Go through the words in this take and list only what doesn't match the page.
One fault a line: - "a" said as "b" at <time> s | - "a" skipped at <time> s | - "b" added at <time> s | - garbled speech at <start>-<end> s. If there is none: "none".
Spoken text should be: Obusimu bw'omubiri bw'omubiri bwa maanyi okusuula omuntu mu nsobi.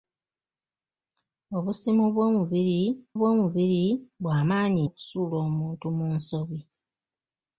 none